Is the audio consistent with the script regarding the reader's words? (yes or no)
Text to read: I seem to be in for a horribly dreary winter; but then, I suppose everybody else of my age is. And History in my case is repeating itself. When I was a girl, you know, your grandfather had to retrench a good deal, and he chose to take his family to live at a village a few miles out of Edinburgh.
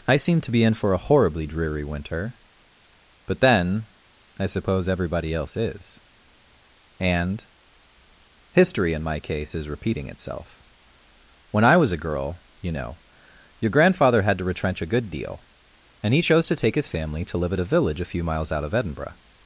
no